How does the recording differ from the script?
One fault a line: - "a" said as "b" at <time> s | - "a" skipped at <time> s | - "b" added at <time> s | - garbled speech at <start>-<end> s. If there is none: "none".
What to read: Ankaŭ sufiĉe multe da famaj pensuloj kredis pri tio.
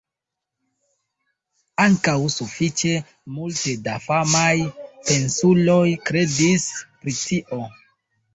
none